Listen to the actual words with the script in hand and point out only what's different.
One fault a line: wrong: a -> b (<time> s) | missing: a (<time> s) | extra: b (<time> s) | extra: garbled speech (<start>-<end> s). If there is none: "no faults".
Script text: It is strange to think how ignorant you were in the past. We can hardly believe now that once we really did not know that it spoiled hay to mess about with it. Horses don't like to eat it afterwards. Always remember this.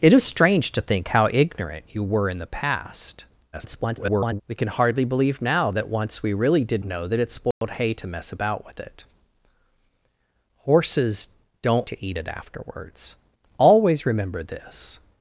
extra: garbled speech (3.5-4.4 s)
missing: not (6.8 s)
missing: like (11.9 s)